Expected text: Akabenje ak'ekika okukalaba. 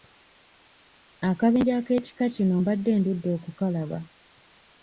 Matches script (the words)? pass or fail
fail